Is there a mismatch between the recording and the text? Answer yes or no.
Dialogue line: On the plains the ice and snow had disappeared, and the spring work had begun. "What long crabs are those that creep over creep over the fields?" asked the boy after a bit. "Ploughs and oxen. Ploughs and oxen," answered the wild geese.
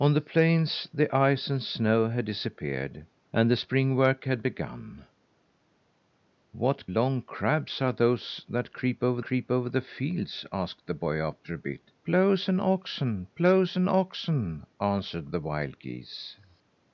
no